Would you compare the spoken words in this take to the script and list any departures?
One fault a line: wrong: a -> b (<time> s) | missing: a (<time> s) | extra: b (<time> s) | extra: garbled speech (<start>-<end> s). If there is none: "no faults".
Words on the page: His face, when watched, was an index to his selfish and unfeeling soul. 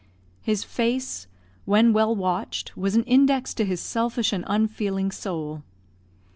extra: well (1.9 s)